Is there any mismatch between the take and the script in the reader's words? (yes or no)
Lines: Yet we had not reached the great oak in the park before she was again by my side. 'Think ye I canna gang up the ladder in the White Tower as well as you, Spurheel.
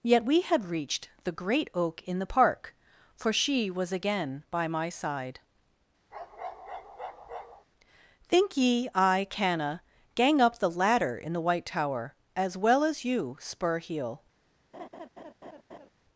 yes